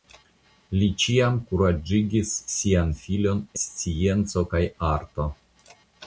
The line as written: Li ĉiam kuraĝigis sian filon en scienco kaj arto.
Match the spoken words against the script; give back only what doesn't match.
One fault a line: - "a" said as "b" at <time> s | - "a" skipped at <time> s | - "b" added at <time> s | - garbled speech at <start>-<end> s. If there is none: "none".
- "en" skipped at 3.5 s